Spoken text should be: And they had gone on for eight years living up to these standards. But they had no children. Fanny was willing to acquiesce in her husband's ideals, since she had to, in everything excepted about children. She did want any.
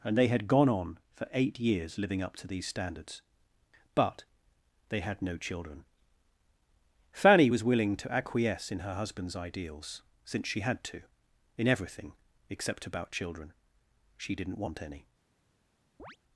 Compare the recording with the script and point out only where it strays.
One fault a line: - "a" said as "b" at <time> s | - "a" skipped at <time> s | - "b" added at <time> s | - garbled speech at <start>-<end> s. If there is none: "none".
- "excepted" said as "except" at 12.5 s
- "did" said as "didn't" at 14.3 s